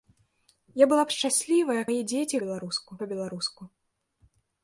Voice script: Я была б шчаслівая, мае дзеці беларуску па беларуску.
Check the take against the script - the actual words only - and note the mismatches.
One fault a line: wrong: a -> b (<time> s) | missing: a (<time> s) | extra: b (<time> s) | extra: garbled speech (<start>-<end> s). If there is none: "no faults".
no faults